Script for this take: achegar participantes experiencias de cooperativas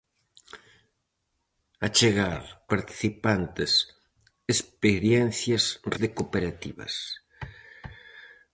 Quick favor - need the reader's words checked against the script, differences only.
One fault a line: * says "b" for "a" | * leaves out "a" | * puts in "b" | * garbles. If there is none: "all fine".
all fine